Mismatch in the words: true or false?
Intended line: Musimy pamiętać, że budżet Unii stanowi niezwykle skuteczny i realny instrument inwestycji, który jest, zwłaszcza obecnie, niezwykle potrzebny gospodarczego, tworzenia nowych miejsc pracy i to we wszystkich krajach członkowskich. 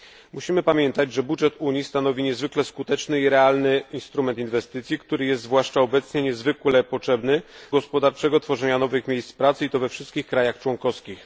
false